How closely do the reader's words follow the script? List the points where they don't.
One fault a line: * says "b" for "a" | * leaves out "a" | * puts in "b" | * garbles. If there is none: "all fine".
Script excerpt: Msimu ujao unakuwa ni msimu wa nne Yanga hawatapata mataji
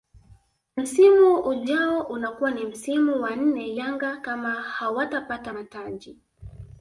* puts in "kama"